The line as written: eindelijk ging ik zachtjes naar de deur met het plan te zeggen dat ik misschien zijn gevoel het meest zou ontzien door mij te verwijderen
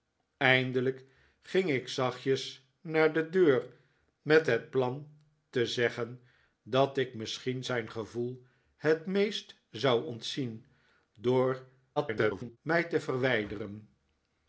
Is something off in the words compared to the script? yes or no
yes